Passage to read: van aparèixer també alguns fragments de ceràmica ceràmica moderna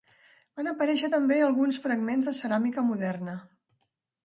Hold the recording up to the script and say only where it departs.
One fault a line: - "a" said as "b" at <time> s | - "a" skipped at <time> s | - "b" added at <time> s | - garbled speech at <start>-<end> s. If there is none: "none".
- "ceràmica" skipped at 2.9 s